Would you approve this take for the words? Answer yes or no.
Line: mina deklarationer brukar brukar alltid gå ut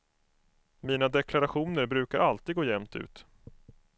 no